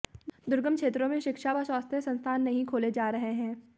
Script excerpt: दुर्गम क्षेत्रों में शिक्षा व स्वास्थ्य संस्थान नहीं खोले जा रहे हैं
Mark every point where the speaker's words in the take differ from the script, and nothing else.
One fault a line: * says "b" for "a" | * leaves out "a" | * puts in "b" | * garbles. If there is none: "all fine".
all fine